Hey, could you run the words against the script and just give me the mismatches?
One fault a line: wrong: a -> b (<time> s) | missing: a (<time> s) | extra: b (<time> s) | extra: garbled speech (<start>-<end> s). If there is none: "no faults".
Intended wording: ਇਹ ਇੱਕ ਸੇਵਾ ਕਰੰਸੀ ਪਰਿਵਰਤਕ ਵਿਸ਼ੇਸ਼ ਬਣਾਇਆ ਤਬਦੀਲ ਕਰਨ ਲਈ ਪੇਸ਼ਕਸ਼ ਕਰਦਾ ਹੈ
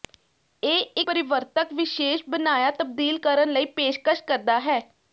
missing: ਇੱਕ ਸੇਵਾ ਕਰੰਸੀ (1.0 s)